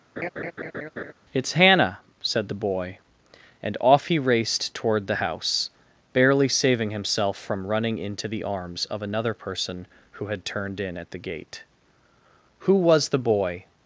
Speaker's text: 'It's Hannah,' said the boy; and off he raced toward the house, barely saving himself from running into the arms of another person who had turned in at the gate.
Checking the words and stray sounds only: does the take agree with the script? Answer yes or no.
no